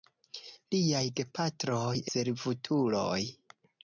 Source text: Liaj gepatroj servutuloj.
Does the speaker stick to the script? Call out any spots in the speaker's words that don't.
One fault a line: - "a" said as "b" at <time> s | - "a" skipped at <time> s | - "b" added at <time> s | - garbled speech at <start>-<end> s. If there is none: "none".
none